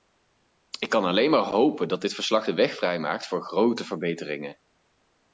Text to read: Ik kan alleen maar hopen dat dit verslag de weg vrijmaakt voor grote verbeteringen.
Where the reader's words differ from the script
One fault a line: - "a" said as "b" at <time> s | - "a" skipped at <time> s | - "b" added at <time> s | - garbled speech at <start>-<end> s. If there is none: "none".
none